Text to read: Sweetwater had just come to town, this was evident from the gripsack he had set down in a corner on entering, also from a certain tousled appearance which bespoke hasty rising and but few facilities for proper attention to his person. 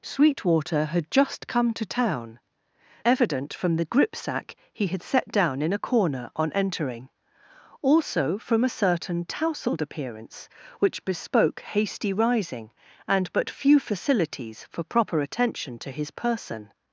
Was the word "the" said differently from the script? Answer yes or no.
no